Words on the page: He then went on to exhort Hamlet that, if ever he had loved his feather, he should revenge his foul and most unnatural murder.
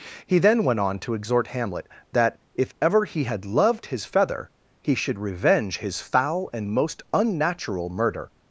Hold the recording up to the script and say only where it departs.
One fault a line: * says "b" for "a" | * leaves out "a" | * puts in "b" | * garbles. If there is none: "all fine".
all fine